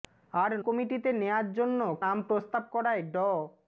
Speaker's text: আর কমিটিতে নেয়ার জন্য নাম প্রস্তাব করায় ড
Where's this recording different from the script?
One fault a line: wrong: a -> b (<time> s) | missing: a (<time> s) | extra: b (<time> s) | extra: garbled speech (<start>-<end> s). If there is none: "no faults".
no faults